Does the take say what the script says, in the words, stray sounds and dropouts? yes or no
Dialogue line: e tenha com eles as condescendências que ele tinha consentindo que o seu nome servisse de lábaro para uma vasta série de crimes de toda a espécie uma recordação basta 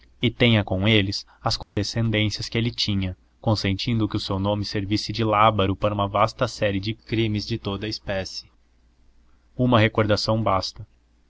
no